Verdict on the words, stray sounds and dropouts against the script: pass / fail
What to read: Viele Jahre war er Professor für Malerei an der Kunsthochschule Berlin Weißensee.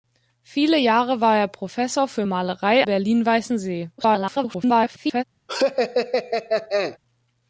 fail